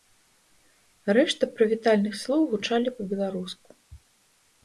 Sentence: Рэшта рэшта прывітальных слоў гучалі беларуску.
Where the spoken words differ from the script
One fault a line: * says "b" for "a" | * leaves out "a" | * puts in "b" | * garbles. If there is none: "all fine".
* leaves out "рэшта"
* puts in "па"